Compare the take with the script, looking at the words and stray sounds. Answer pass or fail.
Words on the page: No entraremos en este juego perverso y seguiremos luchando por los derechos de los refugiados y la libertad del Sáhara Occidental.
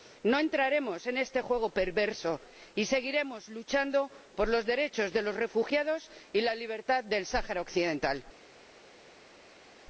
pass